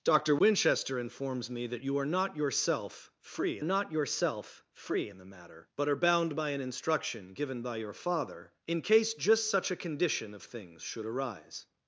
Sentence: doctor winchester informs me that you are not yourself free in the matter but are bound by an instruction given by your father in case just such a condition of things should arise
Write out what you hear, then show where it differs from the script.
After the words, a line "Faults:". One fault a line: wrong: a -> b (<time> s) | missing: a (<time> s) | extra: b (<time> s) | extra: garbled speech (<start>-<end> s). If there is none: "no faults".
doctor winchester informs me that you are not yourself free not yourself free in the matter but are bound by an instruction given by your father in case just such a condition of things should arise
Faults:
extra: not yourself free (3.6 s)